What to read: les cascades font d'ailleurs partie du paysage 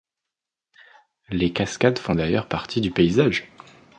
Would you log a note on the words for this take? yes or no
no